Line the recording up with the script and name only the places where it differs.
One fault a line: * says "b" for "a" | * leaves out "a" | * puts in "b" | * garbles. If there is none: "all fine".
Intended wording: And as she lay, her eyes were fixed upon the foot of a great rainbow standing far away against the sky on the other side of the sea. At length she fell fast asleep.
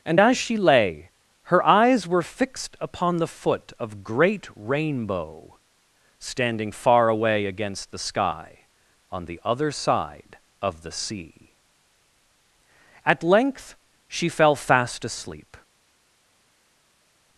* leaves out "a"